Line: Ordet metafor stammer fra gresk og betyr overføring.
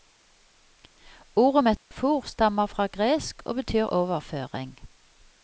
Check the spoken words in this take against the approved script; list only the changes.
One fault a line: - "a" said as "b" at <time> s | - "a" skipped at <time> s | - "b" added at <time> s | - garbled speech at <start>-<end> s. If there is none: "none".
none